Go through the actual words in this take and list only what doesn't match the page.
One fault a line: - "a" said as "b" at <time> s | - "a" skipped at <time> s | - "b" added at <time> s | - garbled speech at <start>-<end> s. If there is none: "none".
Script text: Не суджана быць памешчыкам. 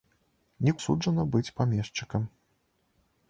none